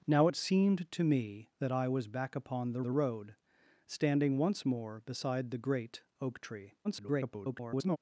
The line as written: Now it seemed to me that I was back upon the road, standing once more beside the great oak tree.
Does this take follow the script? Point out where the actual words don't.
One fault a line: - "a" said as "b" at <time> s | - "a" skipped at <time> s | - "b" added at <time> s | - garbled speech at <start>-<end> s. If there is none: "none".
- "the" added at 2.8 s
- garbled speech at 6.8-8.0 s